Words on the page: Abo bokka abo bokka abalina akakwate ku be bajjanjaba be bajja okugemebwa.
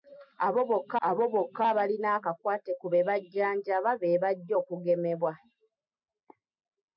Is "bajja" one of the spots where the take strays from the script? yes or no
no